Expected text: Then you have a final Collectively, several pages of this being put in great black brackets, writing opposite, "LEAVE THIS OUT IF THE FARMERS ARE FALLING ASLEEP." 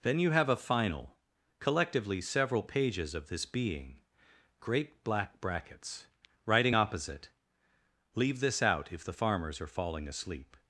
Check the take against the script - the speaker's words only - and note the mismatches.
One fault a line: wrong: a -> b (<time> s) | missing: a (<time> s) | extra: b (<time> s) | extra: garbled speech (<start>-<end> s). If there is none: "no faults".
missing: put in (4.0 s)